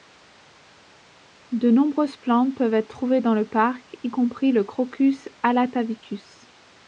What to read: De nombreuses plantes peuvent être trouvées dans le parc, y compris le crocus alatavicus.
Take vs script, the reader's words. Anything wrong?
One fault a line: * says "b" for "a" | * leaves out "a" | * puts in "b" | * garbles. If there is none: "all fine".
all fine